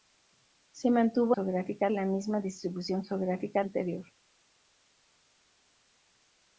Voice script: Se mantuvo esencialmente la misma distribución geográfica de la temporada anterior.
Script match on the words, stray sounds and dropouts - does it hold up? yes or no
no